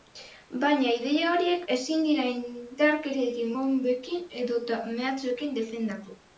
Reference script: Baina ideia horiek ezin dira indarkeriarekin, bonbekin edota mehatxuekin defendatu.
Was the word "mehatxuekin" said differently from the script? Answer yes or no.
no